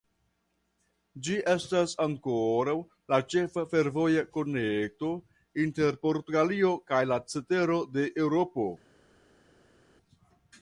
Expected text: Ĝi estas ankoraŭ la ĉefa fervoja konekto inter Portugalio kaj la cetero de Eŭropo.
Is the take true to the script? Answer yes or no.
yes